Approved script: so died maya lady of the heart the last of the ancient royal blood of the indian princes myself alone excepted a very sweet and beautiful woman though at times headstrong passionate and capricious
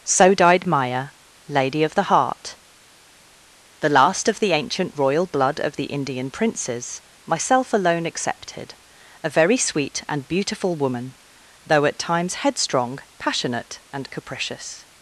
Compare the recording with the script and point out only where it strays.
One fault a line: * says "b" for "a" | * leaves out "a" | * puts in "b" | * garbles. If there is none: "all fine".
all fine